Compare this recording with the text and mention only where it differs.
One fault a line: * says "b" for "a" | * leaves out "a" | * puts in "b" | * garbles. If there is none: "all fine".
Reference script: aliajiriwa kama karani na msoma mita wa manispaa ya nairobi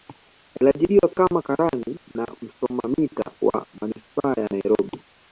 all fine